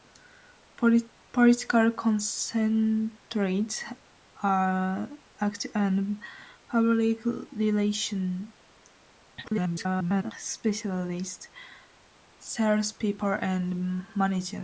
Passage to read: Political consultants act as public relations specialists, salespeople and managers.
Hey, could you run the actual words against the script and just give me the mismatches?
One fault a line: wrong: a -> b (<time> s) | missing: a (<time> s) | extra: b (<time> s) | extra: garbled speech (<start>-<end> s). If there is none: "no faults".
extra: garbled speech (9.4-10.3 s)